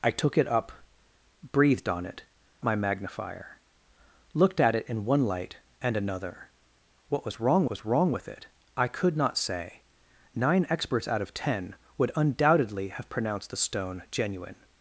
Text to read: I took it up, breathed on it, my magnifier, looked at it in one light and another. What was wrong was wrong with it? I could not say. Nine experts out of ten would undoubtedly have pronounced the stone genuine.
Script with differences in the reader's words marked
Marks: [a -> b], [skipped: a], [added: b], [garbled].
I took it up, breathed on it, my magnifier, looked at it in one light and another. What was wrong was wrong with it? I could not say. Nine experts out of ten would undoubtedly have pronounced the stone genuine.